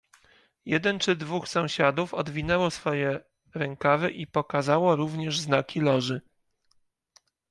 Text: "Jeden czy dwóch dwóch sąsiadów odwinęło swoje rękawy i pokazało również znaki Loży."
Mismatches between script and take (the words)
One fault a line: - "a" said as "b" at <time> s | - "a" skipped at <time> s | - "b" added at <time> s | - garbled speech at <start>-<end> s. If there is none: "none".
- "dwóch" skipped at 1.5 s